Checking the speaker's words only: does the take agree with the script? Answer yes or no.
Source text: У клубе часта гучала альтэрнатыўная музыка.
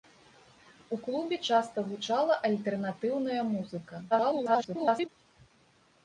no